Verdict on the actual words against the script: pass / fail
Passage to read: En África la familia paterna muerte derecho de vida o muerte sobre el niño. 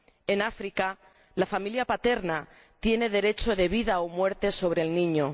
fail